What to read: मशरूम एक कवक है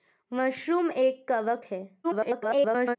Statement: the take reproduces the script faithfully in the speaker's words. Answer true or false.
false